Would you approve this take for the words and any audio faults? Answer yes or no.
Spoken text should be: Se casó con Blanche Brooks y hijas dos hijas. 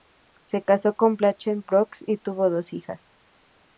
no